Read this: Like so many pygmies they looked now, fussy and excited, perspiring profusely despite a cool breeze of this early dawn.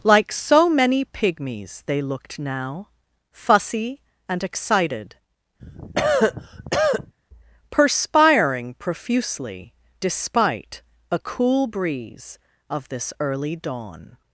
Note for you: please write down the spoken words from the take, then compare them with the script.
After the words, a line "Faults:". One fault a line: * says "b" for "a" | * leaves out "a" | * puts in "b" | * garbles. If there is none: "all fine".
Like so many pygmies they looked now, fussy and excited, perspiring profusely despite a cool breeze of this early dawn.
Faults:
all fine